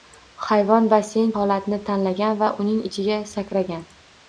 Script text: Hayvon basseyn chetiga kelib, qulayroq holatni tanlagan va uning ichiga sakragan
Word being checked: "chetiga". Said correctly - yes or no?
no